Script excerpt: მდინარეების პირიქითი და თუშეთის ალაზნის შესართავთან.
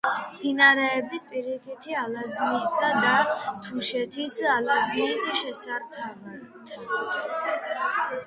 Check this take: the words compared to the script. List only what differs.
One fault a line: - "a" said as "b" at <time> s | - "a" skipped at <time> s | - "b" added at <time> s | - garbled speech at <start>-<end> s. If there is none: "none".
- "ალაზნისა" added at 2.0 s